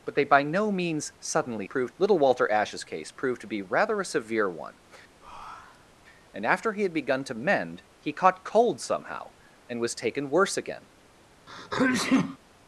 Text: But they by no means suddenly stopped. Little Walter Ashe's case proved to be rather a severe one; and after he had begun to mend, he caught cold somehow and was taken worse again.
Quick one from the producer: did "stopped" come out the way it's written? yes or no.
no